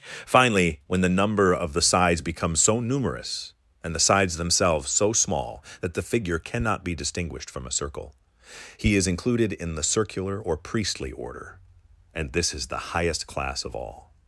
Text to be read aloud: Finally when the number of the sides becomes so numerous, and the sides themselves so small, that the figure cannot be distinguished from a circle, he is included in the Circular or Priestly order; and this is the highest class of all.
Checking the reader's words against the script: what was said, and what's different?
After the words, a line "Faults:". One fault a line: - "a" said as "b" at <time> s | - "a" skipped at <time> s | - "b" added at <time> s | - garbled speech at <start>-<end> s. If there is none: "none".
Finally when the number of the sides becomes so numerous, and the sides themselves so small, that the figure cannot be distinguished from a circle, he is included in the Circular or Priestly order; and this is the highest class of all.
Faults:
none